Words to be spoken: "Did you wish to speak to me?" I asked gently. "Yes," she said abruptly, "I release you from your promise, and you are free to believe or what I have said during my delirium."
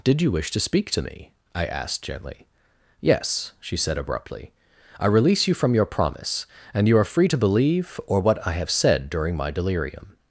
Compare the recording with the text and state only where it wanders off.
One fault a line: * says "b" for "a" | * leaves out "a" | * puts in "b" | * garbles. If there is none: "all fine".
all fine